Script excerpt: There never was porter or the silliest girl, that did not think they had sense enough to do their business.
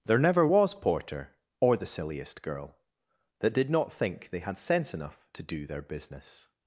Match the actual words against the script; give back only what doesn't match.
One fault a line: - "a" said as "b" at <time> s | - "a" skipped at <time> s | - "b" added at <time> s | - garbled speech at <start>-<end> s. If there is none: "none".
none